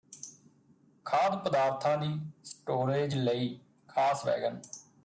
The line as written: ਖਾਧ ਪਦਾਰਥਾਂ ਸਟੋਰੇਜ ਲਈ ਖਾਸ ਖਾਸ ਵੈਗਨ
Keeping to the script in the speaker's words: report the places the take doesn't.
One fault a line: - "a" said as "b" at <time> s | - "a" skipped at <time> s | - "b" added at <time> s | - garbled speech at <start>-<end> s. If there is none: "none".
- "ਦੀ" added at 2.0 s
- "ਖਾਸ" skipped at 4.3 s